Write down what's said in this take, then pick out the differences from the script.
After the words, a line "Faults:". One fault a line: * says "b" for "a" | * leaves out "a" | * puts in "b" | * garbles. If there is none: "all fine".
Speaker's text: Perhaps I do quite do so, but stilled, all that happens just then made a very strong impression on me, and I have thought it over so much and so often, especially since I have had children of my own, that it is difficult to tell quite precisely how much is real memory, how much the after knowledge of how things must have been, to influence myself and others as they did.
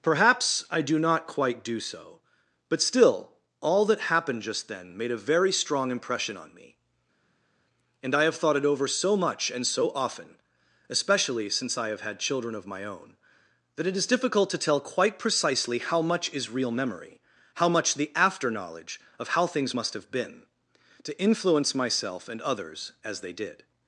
Perhaps I do not quite do so, but still, all that happened just then made a very strong impression on me, and I have thought it over so much and so often, especially since I have had children of my own, that it is difficult to tell quite precisely how much is real memory, how much the after knowledge of how things must have been, to influence myself and others as they did.
Faults:
* puts in "not"
* says "still" for "stilled"
* says "happened" for "happens"